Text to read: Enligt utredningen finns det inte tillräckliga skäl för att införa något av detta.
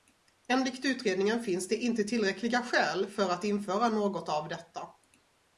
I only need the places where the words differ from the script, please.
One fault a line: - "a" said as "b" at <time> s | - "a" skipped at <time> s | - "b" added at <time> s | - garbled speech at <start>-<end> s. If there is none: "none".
none